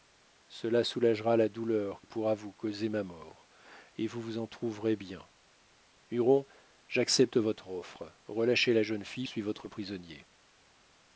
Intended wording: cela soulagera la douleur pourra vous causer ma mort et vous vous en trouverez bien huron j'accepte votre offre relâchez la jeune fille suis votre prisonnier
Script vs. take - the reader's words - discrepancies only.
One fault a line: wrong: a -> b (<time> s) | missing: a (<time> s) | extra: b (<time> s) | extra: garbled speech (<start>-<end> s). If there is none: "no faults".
no faults